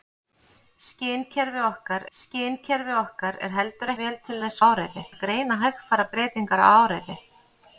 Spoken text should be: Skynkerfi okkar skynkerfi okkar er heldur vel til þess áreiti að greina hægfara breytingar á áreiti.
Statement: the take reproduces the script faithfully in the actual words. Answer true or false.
true